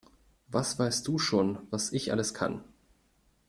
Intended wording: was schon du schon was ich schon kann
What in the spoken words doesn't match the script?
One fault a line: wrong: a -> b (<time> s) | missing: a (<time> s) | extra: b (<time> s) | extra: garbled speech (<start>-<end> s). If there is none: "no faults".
wrong: schon -> weißt (0.8 s)
wrong: schon -> alles (2.1 s)